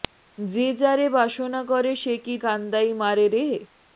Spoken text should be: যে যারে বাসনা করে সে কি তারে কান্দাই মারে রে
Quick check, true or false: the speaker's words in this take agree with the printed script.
false